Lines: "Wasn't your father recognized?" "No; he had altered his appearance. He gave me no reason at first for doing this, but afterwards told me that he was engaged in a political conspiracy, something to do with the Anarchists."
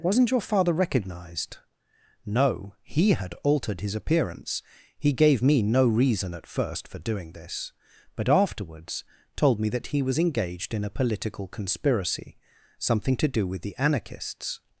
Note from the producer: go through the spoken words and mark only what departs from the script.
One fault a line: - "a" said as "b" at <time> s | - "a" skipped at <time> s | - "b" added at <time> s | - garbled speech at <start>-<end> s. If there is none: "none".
none